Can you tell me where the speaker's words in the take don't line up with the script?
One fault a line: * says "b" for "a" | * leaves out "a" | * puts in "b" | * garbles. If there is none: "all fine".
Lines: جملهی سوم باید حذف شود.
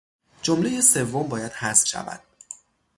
all fine